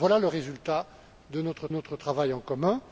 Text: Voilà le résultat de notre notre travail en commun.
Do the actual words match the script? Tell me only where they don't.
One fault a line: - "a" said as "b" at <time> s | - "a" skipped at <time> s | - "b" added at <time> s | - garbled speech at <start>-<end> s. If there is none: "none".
none